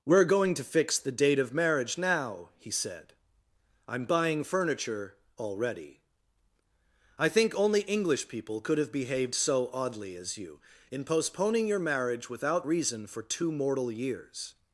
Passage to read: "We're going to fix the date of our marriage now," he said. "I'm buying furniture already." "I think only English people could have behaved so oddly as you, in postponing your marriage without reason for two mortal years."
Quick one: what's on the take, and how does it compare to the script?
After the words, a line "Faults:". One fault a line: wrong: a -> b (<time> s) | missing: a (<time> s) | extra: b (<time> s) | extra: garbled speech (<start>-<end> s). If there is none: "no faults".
"We're going to fix the date of marriage now," he said. "I'm buying furniture already." "I think only English people could have behaved so oddly as you, in postponing your marriage without reason for two mortal years."
Faults:
missing: our (1.5 s)